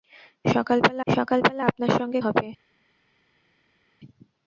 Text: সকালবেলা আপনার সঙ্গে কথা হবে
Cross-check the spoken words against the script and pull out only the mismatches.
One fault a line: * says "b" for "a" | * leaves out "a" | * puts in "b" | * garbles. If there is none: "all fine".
* puts in "সকালবেলা"
* leaves out "কথা"